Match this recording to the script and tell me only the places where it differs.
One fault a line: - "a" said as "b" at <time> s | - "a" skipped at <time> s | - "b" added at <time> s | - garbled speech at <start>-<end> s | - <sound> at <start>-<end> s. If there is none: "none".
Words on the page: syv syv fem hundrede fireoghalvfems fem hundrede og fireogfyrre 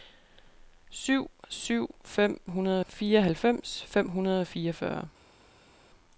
none